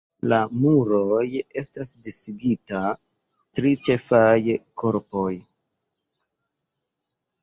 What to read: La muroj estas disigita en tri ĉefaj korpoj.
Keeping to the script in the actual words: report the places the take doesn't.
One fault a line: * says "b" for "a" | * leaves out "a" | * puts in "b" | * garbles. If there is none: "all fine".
* leaves out "en"